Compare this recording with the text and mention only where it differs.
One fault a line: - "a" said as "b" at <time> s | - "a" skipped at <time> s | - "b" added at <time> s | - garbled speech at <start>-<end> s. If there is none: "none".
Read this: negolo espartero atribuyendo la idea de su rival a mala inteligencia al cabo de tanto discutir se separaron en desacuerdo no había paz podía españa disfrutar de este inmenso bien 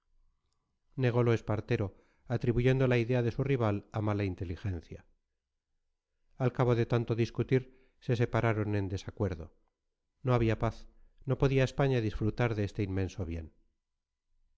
- "no" added at 11.2 s